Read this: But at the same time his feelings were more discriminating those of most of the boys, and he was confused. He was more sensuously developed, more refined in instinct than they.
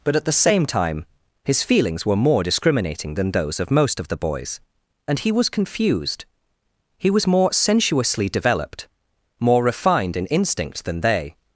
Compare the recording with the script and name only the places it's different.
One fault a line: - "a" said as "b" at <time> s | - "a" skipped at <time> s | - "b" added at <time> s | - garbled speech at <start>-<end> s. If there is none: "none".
- "than" added at 3.1 s